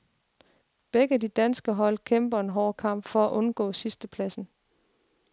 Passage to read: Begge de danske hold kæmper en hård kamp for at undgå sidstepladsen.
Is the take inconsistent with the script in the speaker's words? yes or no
no